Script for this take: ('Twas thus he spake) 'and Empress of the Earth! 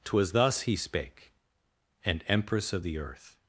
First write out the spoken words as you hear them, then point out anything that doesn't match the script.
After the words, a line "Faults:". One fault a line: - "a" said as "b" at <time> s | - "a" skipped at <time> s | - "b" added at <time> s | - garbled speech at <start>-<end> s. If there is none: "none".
('Twas thus he spake) 'and Empress of the Earth!
Faults:
none